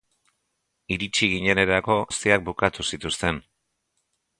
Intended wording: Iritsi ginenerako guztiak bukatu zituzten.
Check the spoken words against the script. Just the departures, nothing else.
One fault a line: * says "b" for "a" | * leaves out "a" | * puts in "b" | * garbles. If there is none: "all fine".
all fine